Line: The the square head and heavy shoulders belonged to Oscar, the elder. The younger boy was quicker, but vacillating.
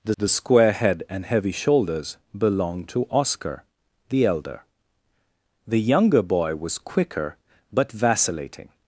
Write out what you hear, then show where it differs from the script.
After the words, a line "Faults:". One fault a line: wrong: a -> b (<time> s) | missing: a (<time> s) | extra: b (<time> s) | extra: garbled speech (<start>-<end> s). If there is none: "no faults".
The the square head and heavy shoulders belonged to Oscar, the elder. The younger boy was quicker, but vacillating.
Faults:
no faults